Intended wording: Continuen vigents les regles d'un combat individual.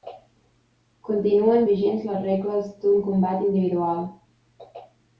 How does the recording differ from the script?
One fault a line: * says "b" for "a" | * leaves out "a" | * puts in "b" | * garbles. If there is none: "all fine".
all fine